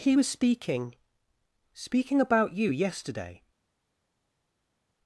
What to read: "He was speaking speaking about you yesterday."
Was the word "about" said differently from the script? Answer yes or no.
no